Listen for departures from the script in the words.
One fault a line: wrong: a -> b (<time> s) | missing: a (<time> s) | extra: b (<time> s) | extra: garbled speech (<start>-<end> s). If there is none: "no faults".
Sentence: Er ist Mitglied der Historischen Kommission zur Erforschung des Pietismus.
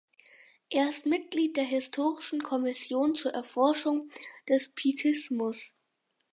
no faults